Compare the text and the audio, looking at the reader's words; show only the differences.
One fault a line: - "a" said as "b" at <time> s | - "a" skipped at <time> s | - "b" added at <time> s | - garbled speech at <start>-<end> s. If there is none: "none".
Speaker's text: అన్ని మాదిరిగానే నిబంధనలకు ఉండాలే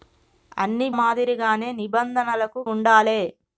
none